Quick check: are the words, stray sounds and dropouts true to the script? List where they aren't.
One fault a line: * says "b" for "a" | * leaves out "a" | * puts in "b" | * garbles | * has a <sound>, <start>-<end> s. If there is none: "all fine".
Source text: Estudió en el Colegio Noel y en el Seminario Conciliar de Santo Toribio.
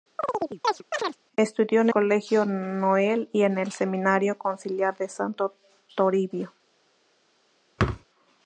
* has a chirp, 0.2-1.2 s
* leaves out "el"
* has a thud, 7.8-8.1 s